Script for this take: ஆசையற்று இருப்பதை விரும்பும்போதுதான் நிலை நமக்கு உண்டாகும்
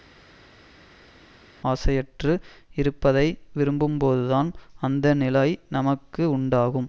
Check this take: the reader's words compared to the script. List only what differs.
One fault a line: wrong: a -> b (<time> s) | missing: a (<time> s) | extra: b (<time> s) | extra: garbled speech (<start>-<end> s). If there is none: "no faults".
extra: அந்த (4.8 s)